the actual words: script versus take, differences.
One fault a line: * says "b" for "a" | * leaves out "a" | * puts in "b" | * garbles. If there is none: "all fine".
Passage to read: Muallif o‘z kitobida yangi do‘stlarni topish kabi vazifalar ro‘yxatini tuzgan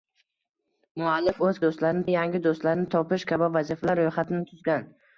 * says "do‘stlarni" for "kitobida"